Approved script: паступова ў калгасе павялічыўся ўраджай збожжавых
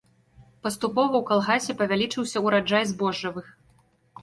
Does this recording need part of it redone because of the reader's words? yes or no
no